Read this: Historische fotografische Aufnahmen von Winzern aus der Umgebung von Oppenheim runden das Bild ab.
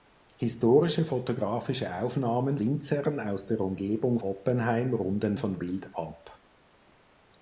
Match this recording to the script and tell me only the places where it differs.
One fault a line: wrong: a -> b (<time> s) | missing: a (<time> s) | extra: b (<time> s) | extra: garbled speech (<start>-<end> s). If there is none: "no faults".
missing: von (2.6 s)
missing: von (4.2 s)
wrong: das -> von (5.3 s)